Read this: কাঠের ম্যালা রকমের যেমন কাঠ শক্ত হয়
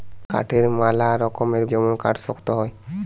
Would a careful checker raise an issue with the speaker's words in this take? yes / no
no